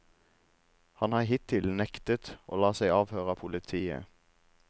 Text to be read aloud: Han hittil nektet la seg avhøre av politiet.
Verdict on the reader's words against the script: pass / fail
fail